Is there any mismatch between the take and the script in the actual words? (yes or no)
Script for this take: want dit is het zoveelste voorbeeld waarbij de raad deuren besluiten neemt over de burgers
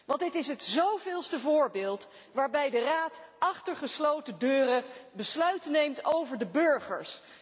yes